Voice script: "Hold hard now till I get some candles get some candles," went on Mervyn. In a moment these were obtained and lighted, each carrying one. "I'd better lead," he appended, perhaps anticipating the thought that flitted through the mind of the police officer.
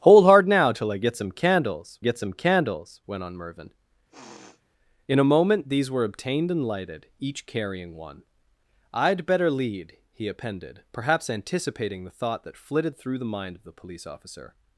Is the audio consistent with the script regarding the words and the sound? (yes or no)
no